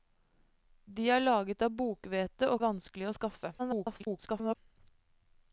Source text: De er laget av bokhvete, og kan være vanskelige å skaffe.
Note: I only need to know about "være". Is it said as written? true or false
false